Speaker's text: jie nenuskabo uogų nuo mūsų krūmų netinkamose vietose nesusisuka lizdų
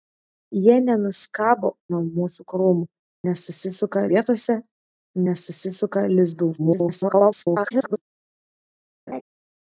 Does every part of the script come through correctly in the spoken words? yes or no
no